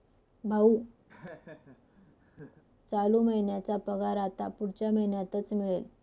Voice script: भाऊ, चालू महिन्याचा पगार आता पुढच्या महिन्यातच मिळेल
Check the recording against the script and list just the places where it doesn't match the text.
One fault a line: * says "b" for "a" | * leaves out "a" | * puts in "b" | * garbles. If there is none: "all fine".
all fine